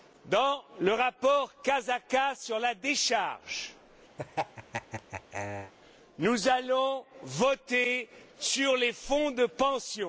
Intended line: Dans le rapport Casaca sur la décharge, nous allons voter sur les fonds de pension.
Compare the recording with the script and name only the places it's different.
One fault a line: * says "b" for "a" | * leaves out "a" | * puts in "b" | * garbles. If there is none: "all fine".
all fine